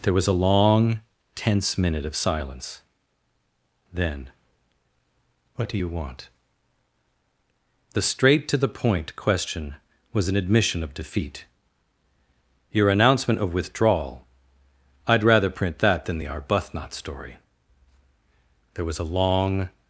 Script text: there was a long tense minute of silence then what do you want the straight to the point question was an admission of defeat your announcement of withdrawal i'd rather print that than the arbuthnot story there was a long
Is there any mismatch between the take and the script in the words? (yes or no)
no